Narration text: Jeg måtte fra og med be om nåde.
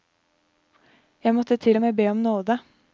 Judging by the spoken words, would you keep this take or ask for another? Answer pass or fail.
fail